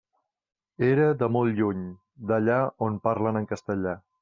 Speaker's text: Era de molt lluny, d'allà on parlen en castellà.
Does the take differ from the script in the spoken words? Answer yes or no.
no